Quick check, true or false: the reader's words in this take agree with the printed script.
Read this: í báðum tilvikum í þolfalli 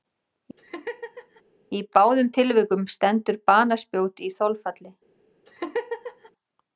false